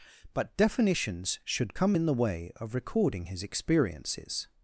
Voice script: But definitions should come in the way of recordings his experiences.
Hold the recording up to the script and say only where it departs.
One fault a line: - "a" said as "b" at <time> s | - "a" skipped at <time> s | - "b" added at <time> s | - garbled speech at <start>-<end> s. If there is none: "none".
- "recordings" said as "recording" at 2.7 s